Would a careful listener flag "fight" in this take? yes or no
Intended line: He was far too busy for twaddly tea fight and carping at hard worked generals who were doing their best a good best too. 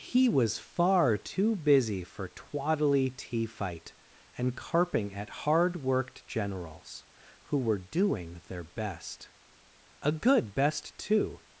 no